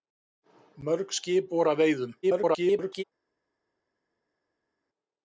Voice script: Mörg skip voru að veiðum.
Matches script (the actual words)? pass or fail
fail